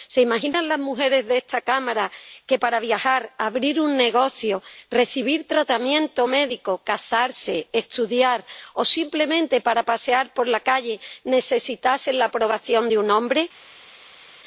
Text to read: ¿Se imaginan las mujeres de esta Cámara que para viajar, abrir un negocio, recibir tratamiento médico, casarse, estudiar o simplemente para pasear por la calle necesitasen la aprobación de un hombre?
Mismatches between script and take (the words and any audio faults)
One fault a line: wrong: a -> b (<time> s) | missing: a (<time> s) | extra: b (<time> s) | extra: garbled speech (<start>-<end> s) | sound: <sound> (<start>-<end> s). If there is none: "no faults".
no faults